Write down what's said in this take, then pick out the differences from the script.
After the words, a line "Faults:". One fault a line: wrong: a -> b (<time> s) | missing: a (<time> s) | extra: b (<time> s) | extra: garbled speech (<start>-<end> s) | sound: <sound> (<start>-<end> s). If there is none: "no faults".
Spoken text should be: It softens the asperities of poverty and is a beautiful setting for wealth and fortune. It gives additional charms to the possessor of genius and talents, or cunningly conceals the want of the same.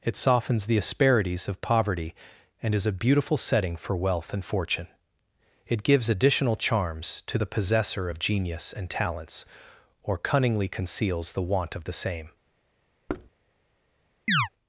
It softens the asperities of poverty and is a beautiful setting for wealth and fortune. It gives additional charms to the possessor of genius and talents, or cunningly conceals the want of the same.
Faults:
sound: thud (13.1-13.3 s)
sound: chirp (14.3-14.5 s)